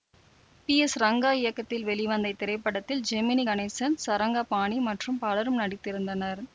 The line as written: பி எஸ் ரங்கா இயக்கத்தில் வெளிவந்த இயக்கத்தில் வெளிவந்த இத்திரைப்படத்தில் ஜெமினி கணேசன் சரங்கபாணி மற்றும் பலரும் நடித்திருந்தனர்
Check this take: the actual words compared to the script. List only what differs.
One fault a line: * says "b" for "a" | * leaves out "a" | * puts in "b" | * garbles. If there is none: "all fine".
* leaves out "இயக்கத்தில் வெளிவந்த"